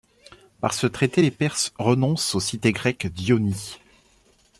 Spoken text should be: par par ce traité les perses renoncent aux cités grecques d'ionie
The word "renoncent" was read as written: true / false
true